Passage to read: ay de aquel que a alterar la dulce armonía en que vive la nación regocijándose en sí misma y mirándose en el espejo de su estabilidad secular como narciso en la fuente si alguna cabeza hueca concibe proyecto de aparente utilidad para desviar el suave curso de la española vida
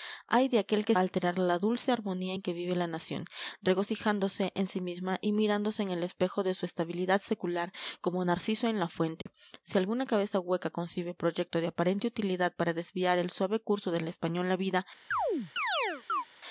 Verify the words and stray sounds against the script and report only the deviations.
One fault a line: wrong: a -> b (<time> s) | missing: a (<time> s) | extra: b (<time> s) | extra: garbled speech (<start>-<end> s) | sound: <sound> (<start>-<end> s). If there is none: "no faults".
sound: dropout (9.2-9.3 s)
sound: chirp (15.1-16.2 s)